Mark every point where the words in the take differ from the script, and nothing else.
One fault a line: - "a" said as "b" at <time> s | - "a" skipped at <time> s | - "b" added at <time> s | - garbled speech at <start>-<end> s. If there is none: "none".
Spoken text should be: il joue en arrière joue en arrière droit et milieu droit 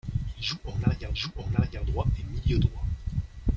none